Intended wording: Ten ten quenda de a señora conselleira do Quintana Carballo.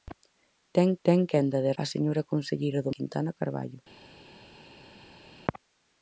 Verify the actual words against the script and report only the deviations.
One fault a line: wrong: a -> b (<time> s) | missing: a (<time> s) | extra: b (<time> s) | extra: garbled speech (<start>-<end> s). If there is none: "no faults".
no faults